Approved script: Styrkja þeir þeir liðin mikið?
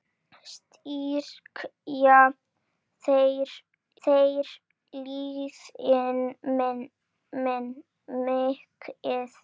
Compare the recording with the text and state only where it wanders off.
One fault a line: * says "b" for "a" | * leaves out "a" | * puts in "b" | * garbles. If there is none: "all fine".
all fine